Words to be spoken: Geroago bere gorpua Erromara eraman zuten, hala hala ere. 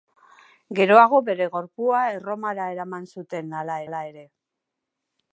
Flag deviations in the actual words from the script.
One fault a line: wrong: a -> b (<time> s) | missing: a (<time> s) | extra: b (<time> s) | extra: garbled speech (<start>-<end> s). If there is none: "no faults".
no faults